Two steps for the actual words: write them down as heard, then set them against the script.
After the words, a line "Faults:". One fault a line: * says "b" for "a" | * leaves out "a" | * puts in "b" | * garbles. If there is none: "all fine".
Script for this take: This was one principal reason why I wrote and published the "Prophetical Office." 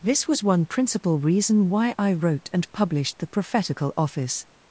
This was one principal reason why I wrote and published the "Prophetical Office."
Faults:
all fine